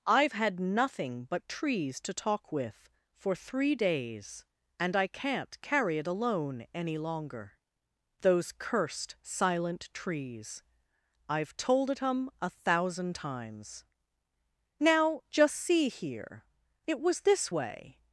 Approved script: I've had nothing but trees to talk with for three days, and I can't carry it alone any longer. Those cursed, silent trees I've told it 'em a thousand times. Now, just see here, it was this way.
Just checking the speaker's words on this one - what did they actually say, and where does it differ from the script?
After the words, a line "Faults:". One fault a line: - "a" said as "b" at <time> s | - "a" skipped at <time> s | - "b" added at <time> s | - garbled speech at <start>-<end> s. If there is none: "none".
I've had nothing but trees to talk with for three days, and I can't carry it alone any longer. Those cursed, silent trees I've told it 'em a thousand times. Now, just see here, it was this way.
Faults:
none